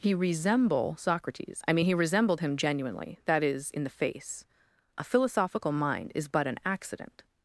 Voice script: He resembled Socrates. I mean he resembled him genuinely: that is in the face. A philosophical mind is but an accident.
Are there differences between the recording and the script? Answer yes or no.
yes